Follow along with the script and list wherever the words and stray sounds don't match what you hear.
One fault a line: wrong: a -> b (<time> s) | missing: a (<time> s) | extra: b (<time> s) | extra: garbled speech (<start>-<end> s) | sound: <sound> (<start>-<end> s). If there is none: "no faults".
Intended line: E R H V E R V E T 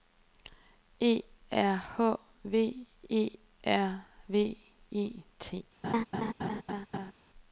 sound: laugh (5.8-7.1 s)